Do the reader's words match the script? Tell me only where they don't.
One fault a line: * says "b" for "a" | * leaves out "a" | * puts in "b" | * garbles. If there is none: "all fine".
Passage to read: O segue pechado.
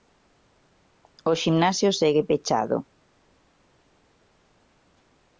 * puts in "ximnasio"